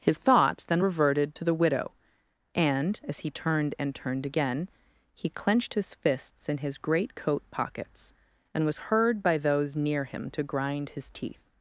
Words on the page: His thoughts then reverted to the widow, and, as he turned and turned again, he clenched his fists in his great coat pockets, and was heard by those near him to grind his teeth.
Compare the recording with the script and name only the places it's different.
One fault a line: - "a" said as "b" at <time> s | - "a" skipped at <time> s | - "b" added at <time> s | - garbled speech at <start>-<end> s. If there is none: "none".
none